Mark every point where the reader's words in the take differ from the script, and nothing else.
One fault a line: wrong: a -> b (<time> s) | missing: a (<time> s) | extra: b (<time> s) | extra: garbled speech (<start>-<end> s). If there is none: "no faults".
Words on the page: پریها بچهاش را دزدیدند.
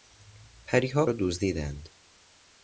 missing: بچهاش (1.1 s)